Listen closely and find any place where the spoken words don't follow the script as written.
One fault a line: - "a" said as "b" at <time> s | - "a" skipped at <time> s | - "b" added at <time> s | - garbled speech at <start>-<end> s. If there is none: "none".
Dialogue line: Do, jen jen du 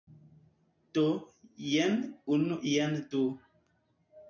- "unu" added at 2.4 s